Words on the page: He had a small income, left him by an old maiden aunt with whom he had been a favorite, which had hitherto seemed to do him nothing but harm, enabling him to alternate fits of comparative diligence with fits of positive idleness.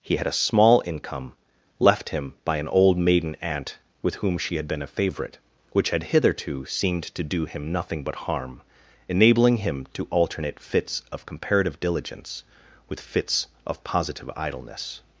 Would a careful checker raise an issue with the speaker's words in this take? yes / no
yes